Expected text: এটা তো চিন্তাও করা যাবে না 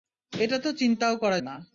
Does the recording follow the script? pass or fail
fail